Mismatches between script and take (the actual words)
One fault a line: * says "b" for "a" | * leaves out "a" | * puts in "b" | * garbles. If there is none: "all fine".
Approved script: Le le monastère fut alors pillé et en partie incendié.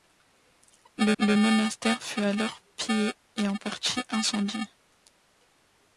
all fine